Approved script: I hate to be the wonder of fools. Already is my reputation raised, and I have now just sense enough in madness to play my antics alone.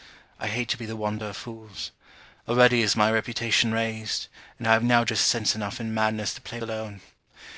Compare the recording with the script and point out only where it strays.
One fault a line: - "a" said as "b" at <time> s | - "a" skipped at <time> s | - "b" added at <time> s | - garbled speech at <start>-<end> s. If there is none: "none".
- "my antics" skipped at 6.6 s